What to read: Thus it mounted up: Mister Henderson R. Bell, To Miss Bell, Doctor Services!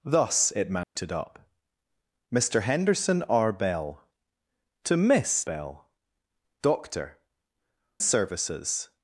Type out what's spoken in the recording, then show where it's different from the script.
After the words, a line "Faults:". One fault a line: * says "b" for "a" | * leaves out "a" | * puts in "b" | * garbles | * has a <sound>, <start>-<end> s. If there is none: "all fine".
Thus it mounted up: Mister Henderson R. Bell, To Miss Bell, Doctor Services!
Faults:
* has a dropout, 0.8-1.0 s